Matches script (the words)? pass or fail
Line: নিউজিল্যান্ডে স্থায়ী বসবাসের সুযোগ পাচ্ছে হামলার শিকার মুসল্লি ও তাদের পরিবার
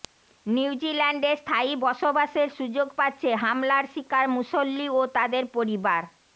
pass